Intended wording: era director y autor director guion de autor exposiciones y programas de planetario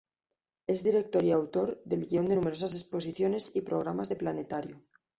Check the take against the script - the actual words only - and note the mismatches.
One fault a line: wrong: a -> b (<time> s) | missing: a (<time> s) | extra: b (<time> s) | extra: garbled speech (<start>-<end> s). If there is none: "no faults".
wrong: era -> es (0.7 s)
wrong: director -> del (1.8 s)
wrong: autor -> numerosas (2.4 s)